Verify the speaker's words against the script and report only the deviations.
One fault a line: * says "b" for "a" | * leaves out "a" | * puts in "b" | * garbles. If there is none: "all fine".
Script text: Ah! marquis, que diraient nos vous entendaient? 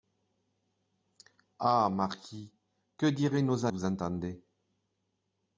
all fine